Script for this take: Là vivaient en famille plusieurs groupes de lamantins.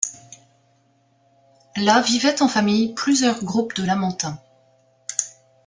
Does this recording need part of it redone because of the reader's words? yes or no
no